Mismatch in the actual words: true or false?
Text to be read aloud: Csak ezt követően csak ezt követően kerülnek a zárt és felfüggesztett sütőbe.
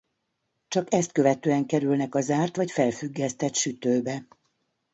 true